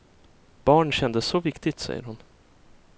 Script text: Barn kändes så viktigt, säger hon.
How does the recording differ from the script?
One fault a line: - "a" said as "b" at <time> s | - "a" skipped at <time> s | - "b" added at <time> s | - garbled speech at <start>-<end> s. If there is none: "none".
none